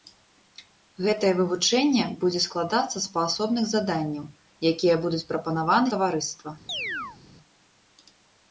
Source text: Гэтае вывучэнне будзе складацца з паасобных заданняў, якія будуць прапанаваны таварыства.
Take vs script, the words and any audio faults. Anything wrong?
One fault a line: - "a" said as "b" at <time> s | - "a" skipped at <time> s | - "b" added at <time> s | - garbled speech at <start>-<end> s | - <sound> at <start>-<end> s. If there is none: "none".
- chirp at 6.7-7.2 s